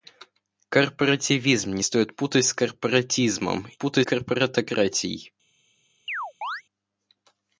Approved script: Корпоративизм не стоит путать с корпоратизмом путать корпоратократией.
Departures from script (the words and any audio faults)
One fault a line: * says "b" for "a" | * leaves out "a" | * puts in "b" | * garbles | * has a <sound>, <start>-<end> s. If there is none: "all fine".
* has a chirp, 6.1-6.6 s